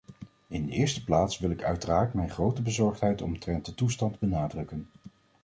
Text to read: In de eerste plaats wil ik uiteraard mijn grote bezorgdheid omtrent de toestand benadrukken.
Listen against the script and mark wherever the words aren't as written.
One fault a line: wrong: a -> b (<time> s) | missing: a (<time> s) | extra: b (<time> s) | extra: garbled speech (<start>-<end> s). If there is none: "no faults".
no faults